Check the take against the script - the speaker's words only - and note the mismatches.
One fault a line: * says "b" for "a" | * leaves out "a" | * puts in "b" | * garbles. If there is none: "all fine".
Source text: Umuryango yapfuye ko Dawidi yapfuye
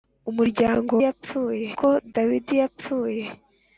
all fine